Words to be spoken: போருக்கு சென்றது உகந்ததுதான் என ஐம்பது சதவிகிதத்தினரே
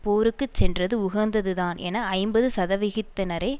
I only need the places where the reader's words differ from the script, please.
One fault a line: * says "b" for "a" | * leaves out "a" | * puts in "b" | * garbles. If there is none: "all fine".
all fine